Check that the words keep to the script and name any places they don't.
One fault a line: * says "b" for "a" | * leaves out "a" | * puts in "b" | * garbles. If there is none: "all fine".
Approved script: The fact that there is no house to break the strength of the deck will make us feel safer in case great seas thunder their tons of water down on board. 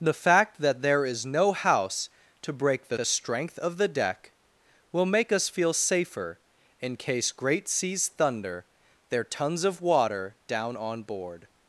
* puts in "the"